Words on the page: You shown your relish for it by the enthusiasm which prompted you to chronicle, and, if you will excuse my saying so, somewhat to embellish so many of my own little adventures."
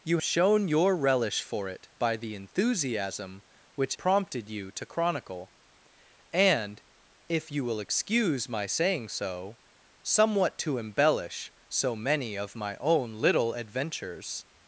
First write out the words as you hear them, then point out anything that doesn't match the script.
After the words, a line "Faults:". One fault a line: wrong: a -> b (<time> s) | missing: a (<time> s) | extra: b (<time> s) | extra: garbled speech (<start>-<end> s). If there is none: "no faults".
You shown your relish for it by the enthusiasm which prompted you to chronicle, and, if you will excuse my saying so, somewhat to embellish so many of my own little adventures."
Faults:
no faults